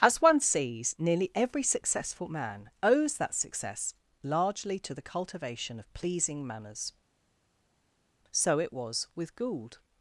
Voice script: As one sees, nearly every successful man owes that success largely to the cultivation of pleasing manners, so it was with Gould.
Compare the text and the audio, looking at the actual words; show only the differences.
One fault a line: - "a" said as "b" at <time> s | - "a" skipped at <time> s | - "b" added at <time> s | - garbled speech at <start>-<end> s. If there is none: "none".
none